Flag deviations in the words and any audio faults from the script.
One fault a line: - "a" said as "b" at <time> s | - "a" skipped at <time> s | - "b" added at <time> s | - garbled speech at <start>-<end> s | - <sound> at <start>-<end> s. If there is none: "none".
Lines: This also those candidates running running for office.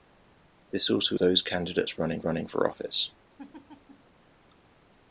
- laugh at 3.4-4.1 s